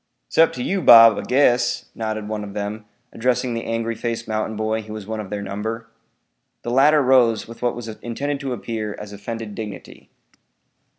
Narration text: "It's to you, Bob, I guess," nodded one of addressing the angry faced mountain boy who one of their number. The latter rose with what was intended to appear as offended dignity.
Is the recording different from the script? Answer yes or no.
yes